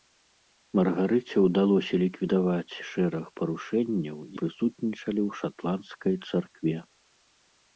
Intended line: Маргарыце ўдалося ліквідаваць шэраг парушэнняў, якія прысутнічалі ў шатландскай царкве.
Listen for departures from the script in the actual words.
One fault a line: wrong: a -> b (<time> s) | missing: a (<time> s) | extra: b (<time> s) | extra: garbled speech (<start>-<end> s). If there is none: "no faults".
missing: якія (4.2 s)